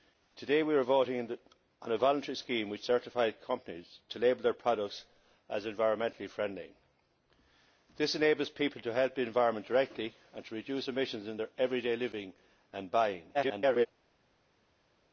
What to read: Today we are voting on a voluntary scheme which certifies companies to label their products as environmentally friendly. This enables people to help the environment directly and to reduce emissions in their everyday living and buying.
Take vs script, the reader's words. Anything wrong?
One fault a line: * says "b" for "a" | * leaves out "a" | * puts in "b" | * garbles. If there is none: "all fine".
* garbles